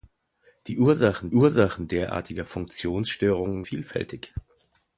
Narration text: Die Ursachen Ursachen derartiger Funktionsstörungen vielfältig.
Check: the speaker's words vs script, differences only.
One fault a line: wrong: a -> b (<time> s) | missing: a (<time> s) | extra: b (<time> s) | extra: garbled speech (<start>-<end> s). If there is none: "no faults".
no faults